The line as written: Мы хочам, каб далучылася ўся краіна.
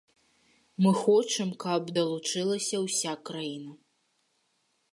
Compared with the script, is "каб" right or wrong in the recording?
right